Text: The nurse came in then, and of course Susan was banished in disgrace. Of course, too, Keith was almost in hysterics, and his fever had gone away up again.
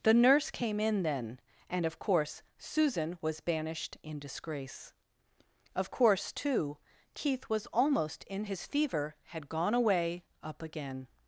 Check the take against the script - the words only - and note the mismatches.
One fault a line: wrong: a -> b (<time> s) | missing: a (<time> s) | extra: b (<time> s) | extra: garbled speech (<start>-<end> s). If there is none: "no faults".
missing: hysterics and (8.4 s)